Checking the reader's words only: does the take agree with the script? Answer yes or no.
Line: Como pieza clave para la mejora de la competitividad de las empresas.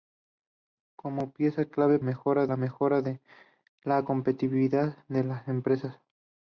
no